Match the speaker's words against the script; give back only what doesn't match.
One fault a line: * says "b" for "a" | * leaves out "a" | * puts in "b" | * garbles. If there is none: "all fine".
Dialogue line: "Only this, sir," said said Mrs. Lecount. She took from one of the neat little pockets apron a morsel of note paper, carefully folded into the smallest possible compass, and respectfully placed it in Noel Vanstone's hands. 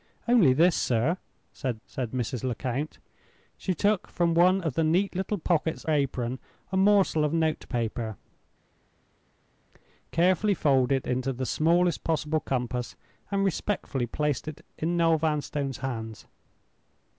all fine